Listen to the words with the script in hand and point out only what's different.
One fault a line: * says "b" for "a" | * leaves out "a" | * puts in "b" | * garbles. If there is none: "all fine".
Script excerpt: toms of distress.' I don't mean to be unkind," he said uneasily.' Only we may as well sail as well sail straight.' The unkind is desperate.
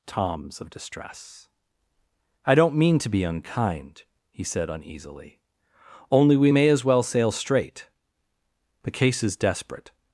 * leaves out "as well sail"
* says "case" for "unkind"